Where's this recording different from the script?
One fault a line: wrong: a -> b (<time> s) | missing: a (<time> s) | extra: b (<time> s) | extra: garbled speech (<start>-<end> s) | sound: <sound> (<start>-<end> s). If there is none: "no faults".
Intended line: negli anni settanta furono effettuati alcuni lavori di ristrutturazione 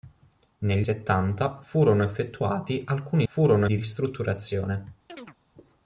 missing: anni (0.9 s)
wrong: lavori -> furono (3.2 s)
sound: chirp (5.1-5.4 s)